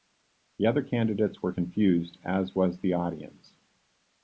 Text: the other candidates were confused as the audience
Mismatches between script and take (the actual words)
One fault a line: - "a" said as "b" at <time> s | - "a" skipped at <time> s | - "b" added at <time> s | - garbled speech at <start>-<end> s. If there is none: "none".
- "was" added at 2.5 s